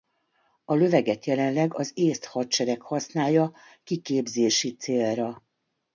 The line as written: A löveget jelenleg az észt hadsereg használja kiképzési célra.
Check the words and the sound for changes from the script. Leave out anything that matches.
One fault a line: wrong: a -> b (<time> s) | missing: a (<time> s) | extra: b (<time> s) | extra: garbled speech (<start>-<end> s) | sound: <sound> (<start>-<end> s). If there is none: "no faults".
no faults